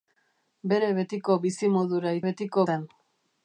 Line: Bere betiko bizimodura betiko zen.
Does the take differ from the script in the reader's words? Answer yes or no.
no